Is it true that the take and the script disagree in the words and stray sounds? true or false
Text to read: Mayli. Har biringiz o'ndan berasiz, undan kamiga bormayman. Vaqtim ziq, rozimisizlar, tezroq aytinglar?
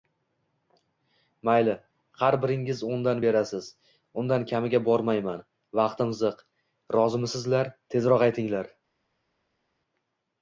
false